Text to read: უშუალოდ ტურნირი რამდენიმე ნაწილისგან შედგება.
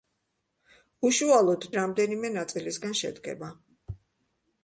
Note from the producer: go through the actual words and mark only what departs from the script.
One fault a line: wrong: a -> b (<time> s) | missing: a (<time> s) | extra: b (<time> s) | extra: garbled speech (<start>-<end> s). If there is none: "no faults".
missing: ტურნირი (1.7 s)